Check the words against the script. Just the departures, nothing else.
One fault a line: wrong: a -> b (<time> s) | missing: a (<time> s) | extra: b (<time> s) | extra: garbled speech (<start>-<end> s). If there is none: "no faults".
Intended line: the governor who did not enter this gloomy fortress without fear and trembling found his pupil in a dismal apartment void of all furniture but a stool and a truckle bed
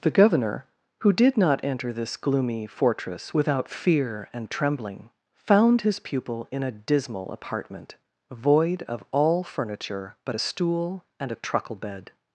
no faults